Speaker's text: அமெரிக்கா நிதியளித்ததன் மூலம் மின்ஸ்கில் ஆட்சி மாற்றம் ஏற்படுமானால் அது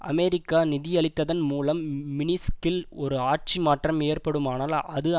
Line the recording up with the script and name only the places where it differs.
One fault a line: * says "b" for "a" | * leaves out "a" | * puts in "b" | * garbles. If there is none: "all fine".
* puts in "ஒரு"